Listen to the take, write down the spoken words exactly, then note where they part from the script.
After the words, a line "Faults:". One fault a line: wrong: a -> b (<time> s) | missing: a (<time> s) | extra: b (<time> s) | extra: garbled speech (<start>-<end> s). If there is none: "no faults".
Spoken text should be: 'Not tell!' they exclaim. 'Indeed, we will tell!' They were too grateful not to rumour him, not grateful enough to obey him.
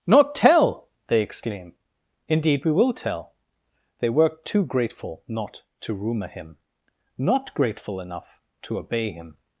'Not tell!' they exclaim. 'Indeed, we will tell!' They were too grateful not to rumour him, not grateful enough to obey him.
Faults:
no faults